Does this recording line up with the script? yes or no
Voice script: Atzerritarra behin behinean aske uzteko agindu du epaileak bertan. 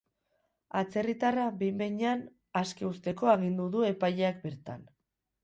yes